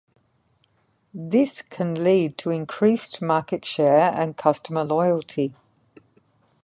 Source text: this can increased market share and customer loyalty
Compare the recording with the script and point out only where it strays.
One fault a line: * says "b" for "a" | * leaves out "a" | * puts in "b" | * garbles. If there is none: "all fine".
* puts in "lead to"